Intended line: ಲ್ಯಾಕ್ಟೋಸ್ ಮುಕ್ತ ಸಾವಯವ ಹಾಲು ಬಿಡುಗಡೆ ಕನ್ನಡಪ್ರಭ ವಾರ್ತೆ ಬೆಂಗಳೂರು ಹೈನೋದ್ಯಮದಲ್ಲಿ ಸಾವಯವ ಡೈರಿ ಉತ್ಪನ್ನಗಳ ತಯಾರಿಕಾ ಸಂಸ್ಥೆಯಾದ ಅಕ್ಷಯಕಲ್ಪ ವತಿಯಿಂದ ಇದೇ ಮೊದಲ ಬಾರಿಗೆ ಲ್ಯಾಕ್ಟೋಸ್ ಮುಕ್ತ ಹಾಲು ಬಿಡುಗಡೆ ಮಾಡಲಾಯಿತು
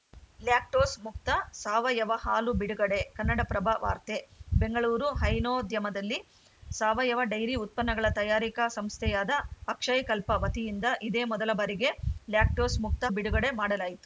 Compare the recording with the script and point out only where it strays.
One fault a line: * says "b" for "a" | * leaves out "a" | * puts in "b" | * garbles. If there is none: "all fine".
* leaves out "ಹಾಲು"